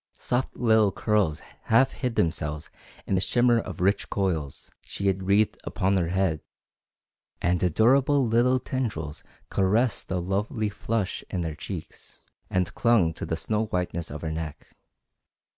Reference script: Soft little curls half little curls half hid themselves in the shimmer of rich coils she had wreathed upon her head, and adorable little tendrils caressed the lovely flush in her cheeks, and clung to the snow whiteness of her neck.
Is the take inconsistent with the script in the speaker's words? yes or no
yes